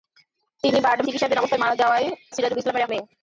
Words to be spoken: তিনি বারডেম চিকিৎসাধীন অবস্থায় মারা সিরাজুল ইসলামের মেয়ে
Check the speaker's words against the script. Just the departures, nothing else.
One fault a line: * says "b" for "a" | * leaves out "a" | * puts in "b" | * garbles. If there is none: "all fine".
all fine